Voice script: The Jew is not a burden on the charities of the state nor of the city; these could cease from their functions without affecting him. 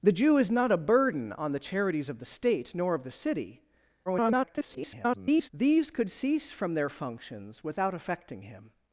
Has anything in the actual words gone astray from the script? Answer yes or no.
yes